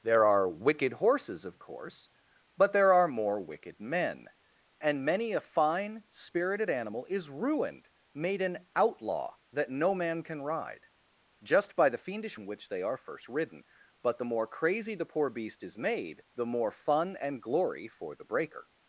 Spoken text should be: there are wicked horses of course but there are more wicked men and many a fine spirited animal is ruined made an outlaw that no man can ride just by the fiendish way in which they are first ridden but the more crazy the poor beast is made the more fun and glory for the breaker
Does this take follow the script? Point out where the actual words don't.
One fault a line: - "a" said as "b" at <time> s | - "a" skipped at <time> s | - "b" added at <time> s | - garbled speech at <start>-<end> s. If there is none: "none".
- "way" skipped at 12.4 s